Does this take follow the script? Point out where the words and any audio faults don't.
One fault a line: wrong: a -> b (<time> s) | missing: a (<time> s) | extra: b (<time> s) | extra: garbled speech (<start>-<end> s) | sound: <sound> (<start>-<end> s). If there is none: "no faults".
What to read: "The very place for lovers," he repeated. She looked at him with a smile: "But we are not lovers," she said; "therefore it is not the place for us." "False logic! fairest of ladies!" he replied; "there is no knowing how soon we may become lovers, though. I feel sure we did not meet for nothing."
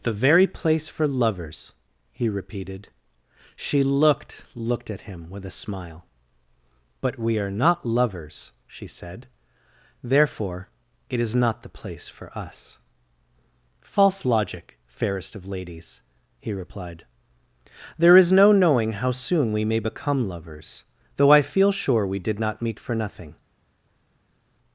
extra: looked (4.5 s)